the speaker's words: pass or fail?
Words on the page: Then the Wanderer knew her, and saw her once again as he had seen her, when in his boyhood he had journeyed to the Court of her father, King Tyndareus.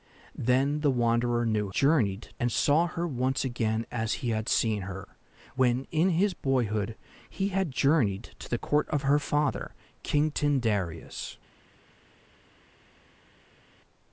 fail